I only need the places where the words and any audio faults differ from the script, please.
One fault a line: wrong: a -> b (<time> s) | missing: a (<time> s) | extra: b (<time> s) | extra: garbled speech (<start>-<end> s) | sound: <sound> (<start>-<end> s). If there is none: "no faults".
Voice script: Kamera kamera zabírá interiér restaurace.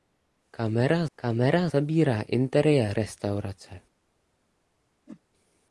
sound: whoosh (5.1-5.2 s)